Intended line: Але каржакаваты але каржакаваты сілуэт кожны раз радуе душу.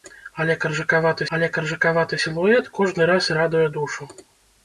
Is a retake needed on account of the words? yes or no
no